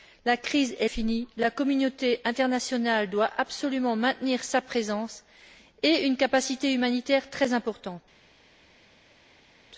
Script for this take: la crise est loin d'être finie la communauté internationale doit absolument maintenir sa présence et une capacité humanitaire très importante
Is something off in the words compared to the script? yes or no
yes